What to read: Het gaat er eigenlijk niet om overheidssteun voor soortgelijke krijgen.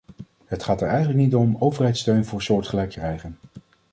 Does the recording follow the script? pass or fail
pass